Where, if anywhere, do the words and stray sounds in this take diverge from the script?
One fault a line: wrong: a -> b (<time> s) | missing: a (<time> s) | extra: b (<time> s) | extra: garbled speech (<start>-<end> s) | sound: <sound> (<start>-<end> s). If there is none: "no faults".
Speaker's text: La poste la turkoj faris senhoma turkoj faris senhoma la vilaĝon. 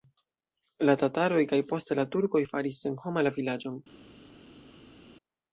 extra: tataroj kaj (1.0 s)
missing: turkoj faris senhoma (3.3 s)